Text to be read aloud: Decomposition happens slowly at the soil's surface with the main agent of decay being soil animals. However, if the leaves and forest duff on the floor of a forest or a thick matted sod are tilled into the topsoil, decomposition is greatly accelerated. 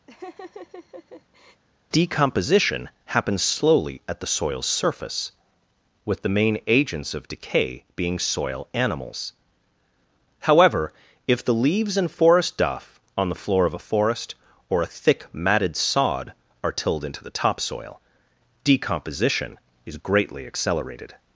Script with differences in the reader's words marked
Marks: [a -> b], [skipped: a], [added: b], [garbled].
Decomposition happens slowly at the soil's surface with the main [agent -> agents] of decay being soil animals. However, if the leaves and forest duff on the floor of a forest or a thick matted sod are tilled into the topsoil, decomposition is greatly accelerated.